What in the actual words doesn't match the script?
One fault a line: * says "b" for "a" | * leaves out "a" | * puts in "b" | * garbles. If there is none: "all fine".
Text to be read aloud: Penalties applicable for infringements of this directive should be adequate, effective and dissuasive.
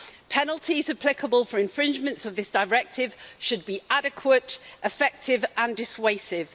all fine